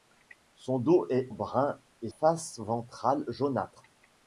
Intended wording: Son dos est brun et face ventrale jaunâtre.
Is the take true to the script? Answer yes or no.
yes